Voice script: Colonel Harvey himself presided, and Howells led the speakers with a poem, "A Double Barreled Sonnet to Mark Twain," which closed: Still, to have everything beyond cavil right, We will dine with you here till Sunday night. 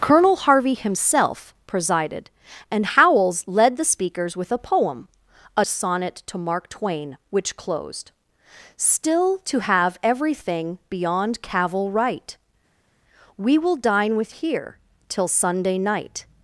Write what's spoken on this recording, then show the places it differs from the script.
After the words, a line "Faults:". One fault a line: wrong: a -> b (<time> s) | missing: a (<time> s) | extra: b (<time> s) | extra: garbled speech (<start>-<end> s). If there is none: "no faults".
Colonel Harvey himself presided, and Howells led the speakers with a poem, "A Sonnet to Mark Twain," which closed: Still, to have everything beyond cavil right, We will dine with here till Sunday night.
Faults:
missing: Double Barreled (5.6 s)
missing: you (14.3 s)